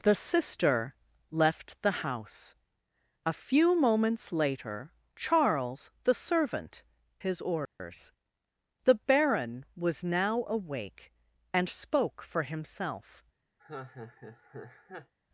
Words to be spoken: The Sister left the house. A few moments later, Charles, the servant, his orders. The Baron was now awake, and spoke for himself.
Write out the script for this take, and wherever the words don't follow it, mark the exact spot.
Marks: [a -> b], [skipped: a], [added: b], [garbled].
The Sister left the house. A few moments later, Charles, the servant, his orders. The Baron was now awake, and spoke for himself.